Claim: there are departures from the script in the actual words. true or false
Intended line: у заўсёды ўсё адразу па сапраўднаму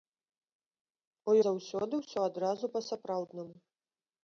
false